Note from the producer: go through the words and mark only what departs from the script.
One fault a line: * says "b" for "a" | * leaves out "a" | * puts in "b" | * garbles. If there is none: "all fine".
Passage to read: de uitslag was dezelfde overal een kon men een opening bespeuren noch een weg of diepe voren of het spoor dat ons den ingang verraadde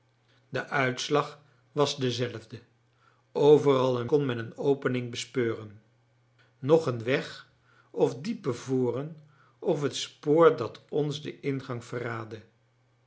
all fine